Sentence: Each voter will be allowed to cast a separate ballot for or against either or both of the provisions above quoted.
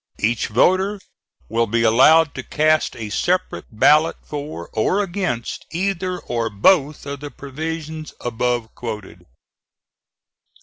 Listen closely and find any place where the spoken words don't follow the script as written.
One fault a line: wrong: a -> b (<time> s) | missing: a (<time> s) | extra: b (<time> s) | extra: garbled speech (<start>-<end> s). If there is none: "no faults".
no faults